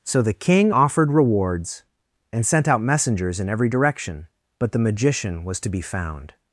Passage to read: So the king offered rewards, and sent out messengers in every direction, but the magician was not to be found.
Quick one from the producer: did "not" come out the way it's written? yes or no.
no